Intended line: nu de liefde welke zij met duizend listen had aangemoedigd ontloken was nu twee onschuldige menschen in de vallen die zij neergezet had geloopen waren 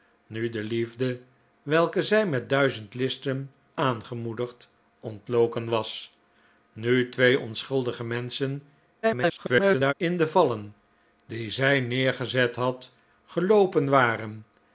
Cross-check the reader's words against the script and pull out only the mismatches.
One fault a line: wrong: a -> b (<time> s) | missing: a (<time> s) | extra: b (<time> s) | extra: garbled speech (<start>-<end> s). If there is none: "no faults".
missing: had (3.5 s)
extra: garbled speech (9.0-9.9 s)